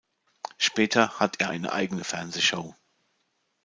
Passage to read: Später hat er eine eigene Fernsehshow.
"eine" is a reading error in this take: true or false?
false